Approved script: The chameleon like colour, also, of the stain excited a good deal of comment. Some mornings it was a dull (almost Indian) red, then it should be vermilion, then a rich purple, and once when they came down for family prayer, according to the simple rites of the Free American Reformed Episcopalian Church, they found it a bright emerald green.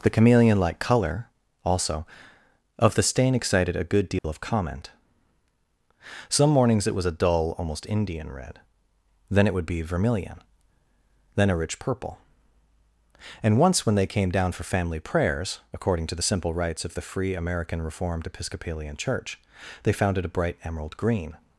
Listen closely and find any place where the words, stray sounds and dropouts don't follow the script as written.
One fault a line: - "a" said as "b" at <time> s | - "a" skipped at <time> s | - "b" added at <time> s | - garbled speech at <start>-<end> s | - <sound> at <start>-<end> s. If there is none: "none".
- dropout at 4.2-4.2 s
- "should" said as "would" at 9.5 s
- "prayer" said as "prayers" at 15.0 s